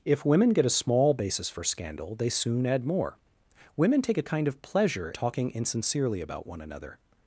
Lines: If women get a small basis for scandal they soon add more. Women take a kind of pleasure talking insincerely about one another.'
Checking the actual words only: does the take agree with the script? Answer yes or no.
yes